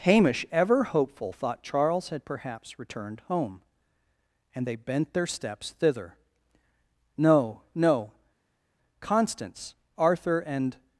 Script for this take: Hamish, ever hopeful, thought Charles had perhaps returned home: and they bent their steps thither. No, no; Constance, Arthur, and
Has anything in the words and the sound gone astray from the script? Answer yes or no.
no